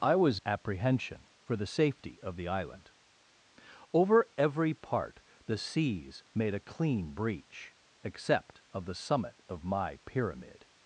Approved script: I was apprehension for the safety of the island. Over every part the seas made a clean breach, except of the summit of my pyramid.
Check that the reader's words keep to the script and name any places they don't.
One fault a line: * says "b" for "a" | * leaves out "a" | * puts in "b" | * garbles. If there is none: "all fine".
all fine